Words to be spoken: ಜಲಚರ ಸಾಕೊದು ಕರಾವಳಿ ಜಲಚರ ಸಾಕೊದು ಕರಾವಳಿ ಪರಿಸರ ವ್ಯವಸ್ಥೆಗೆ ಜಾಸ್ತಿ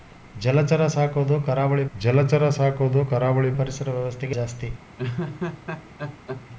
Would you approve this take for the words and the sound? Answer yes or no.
no